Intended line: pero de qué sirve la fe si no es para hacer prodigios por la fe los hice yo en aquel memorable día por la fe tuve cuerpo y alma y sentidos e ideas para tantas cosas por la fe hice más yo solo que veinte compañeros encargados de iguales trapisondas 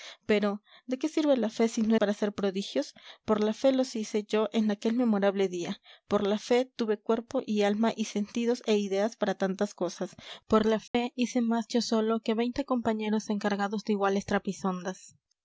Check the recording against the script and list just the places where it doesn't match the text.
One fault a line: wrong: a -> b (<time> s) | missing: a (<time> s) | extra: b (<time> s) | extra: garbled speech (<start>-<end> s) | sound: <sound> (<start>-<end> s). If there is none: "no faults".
missing: es (1.9 s)
sound: dropout (10.9-10.9 s)